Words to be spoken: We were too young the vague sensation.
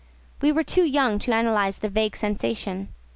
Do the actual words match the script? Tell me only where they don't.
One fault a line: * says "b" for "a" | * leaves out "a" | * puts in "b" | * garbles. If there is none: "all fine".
* puts in "to analyze"